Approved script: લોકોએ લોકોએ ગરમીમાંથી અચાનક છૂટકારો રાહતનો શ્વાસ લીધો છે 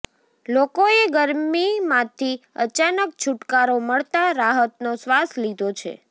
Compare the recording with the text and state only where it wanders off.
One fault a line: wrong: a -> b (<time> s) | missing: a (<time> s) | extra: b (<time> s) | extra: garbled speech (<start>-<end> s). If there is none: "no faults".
missing: લોકોએ (1.0 s)
extra: મળતા (3.8 s)